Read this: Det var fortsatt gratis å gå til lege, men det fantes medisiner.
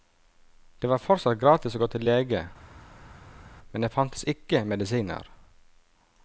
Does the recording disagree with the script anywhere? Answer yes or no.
yes